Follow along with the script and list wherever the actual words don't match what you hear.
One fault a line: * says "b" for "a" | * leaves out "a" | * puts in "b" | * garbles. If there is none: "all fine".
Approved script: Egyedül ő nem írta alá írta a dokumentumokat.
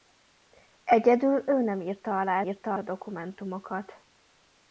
all fine